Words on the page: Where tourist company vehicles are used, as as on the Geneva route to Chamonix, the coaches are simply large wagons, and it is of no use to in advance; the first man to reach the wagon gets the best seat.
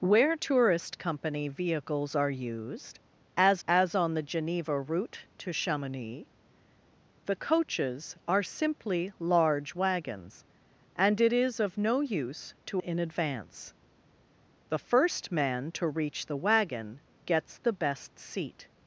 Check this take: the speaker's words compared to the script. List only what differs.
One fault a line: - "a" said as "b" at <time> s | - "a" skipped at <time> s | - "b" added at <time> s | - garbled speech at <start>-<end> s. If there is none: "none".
none